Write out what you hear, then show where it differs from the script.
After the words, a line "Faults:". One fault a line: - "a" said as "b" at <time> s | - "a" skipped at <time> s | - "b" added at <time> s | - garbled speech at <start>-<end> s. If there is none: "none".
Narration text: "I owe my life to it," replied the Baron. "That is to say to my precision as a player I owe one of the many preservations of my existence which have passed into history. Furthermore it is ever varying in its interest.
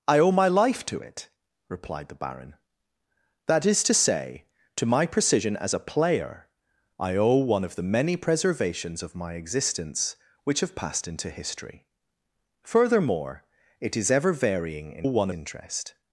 "I owe my life to it," replied the Baron. "That is to say to my precision as a player I owe one of the many preservations of my existence which have passed into history. Furthermore it is ever varying in one interest.
Faults:
- "its" said as "one" at 15.0 s